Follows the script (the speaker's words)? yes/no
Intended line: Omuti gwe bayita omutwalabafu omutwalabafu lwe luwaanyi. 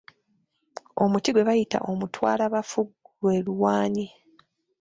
no